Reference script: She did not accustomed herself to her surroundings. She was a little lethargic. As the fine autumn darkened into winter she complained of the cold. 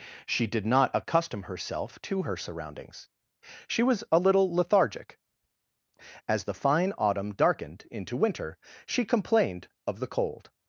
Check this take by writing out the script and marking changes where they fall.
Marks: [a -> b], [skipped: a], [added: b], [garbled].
She did not [accustomed -> accustom] herself to her surroundings. She was a little lethargic. As the fine autumn darkened into winter she complained of the cold.